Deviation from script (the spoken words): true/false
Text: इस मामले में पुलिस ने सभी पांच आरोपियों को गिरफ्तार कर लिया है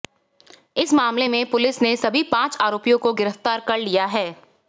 false